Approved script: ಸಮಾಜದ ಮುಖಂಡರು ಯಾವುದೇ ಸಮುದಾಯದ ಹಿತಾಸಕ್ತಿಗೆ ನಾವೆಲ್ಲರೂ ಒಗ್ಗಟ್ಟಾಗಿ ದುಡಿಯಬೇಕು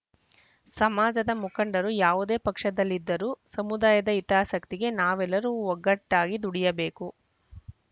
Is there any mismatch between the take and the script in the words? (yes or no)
yes